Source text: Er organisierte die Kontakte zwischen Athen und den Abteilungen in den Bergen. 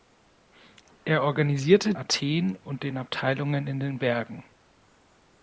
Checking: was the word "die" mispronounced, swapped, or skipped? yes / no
yes